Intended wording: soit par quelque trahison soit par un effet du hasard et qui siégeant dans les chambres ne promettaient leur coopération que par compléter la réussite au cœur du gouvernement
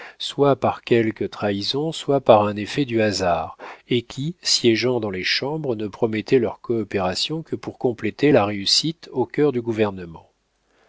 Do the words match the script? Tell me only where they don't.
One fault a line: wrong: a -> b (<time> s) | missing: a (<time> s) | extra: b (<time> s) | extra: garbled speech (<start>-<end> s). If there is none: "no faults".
wrong: par -> pour (7.6 s)